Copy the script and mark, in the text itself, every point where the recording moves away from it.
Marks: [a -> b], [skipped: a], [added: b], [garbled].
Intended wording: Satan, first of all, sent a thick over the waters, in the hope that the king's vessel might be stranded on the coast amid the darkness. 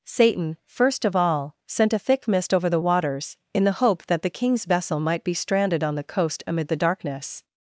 Satan, first of all, sent a thick [added: mist] over the waters, in the hope that the king's vessel might be stranded on the coast amid the darkness.